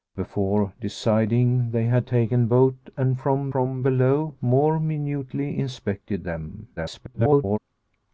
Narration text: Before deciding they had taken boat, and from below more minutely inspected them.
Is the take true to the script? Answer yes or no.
no